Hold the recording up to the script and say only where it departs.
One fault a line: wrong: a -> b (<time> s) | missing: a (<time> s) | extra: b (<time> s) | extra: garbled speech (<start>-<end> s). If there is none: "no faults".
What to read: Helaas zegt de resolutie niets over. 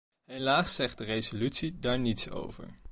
extra: daar (1.8 s)